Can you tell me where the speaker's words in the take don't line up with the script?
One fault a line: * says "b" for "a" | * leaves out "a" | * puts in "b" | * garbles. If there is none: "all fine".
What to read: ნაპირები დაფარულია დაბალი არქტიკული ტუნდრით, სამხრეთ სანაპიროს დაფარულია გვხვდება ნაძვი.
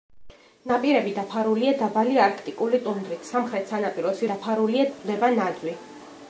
all fine